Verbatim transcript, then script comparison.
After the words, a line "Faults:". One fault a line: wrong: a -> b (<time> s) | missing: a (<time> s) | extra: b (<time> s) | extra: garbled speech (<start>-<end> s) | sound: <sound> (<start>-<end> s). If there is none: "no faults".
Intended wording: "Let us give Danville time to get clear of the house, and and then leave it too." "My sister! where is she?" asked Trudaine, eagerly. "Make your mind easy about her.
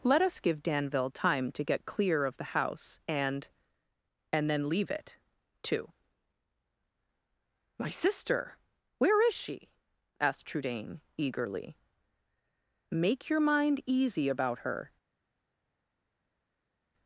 "Let us give Danville time to get clear of the house, and and then leave it too." "My sister! where is she?" asked Trudaine, eagerly. "Make your mind easy about her.
Faults:
no faults